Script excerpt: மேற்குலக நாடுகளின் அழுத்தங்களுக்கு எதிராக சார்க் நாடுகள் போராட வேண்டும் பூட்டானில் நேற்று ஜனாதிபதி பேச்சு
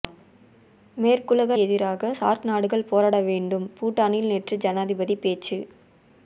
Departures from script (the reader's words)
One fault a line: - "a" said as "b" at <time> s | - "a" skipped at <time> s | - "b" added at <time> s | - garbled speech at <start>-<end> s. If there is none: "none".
- "நாடுகளின் அழுத்தங்களுக்கு" skipped at 1.6 s